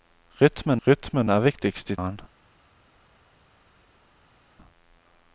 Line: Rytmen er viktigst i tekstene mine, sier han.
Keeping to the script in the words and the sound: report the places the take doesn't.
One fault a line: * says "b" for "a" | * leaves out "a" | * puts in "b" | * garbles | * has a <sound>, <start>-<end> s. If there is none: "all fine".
* puts in "rytmen"
* leaves out "tekstene mine sier"